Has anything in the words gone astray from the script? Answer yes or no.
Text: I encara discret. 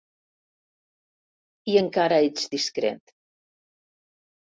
yes